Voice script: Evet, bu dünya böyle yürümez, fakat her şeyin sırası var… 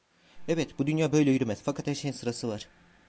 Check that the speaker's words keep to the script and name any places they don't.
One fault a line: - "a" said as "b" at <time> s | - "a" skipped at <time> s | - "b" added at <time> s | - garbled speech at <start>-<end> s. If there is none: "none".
none